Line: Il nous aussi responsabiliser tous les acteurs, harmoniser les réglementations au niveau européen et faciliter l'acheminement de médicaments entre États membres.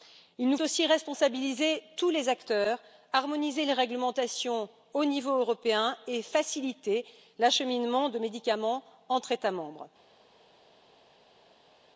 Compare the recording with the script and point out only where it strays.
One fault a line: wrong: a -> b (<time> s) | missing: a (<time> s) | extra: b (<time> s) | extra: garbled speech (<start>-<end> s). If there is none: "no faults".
no faults